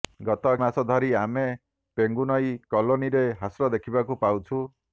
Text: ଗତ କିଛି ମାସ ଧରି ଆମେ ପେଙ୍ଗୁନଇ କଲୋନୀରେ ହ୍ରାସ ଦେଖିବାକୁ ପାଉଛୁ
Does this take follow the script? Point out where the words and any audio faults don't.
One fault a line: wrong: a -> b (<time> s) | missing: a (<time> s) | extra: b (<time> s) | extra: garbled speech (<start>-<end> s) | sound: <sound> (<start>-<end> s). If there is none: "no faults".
missing: କିଛି (0.5 s)